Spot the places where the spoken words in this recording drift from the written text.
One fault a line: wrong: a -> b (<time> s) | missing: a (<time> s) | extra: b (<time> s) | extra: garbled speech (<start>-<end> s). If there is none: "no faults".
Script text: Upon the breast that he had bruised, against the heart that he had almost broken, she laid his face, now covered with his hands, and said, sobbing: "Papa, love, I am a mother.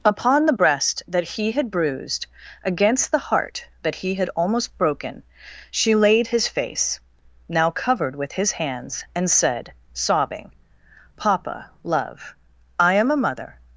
no faults